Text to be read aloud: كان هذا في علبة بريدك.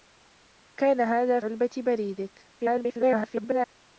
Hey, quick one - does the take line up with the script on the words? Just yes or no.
no